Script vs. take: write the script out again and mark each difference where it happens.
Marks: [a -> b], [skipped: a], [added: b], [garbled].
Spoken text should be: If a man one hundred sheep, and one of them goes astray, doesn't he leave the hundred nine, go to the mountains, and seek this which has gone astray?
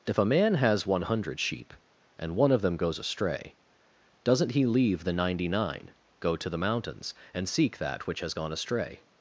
If a man [added: has] one hundred sheep, and one of them goes astray, doesn't he leave the [hundred -> ninety] nine, go to the mountains, and seek [this -> that] which has gone astray?